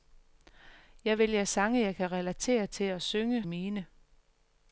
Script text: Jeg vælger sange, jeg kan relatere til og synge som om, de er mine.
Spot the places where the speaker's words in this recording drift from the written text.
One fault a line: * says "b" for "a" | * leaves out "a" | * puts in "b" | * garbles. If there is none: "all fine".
* leaves out "som om de"